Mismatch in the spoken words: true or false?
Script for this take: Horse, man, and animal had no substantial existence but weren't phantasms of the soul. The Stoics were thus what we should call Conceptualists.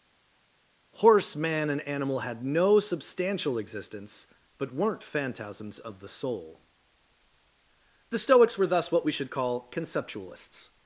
false